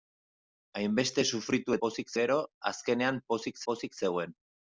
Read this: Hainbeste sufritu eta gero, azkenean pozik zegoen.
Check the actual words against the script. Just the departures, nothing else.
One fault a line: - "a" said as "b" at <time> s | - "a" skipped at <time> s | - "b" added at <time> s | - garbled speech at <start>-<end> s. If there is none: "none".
- "eta" said as "pozik" at 1.9 s
- "pozik" added at 3.7 s